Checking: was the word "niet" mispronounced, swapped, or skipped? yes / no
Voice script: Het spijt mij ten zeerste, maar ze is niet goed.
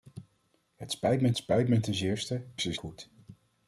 yes